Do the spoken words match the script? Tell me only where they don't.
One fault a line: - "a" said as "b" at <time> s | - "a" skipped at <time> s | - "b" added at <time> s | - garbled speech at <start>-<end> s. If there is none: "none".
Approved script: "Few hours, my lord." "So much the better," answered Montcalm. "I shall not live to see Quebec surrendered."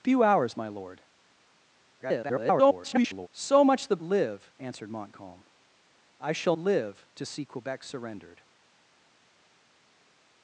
- garbled speech at 2.0-3.3 s
- "better" said as "live" at 4.0 s
- "not" skipped at 6.6 s